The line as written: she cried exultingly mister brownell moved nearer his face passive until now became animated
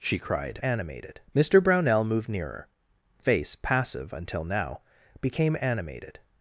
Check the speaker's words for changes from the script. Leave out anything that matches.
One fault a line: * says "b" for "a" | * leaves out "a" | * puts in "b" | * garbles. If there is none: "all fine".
* says "animated" for "exultingly"
* leaves out "his"